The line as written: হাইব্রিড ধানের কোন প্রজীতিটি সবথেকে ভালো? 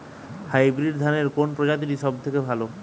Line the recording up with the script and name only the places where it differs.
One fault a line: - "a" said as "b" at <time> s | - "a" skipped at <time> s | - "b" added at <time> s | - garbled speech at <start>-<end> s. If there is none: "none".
none